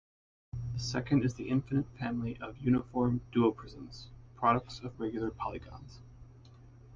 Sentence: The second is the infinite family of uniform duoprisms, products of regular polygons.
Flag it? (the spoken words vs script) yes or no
no